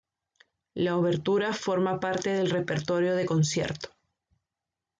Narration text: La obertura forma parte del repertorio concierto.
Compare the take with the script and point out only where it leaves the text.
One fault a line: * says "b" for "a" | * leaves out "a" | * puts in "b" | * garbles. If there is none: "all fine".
* puts in "de"